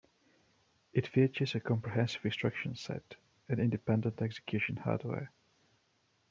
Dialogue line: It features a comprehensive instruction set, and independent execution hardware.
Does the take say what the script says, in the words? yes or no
yes